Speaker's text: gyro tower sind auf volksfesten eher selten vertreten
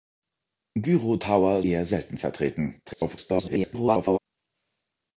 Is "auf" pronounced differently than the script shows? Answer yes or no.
yes